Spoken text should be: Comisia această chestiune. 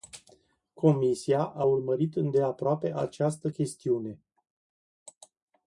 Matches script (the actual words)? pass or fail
fail